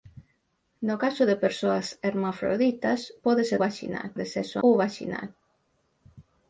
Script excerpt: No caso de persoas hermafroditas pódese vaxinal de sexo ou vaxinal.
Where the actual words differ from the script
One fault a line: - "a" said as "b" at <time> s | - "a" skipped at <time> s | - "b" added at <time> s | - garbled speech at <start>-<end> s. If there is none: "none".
none